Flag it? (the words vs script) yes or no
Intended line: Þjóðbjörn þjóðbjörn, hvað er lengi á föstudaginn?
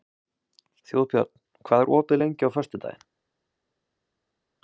yes